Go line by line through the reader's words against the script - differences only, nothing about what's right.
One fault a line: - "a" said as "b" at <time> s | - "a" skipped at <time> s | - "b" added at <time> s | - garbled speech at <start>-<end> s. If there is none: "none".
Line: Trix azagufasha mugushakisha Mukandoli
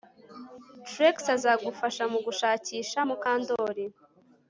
none